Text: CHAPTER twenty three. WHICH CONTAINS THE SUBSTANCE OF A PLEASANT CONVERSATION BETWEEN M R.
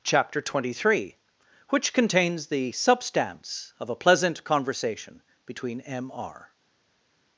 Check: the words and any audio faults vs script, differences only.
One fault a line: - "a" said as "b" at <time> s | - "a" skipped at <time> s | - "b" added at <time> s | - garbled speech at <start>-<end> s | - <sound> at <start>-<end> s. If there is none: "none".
none